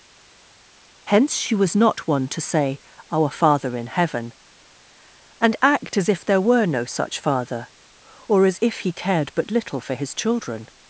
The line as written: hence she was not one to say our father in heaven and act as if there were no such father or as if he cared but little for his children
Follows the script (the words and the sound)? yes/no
yes